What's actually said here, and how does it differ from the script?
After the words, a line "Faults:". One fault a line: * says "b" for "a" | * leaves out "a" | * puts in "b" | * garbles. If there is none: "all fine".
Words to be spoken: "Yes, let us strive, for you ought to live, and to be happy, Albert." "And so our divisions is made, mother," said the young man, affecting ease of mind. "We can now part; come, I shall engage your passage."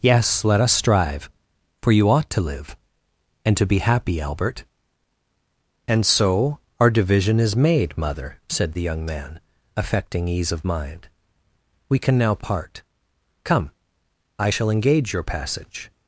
"Yes, let us strive, for you ought to live, and to be happy, Albert." "And so our division is made, mother," said the young man, affecting ease of mind. "We can now part; come, I shall engage your passage."
Faults:
* says "division" for "divisions"